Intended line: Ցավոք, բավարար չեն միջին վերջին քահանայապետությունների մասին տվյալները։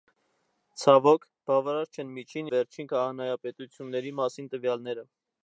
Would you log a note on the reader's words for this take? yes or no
no